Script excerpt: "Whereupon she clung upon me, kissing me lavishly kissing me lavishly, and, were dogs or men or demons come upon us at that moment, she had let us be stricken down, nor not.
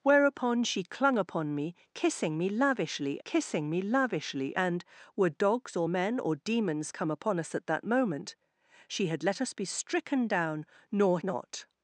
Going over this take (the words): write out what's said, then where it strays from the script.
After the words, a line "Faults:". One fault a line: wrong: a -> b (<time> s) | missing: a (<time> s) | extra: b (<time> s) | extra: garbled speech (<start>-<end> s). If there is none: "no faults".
"Whereupon she clung upon me, kissing me lavishly kissing me lavishly, and, were dogs or men or demons come upon us at that moment, she had let us be stricken down, nor not.
Faults:
no faults